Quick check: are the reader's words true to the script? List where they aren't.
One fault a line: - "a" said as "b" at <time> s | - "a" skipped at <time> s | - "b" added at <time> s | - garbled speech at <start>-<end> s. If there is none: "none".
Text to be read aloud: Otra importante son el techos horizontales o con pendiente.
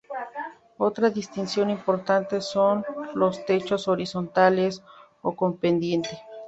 - "distinción" added at 1.1 s
- "el" said as "los" at 3.1 s